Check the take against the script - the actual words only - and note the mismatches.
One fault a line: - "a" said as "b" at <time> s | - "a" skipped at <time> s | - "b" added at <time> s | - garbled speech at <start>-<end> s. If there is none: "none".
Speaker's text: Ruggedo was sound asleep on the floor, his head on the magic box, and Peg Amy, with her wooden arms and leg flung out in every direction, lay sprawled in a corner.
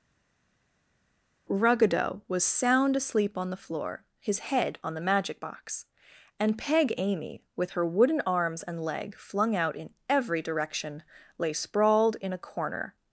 none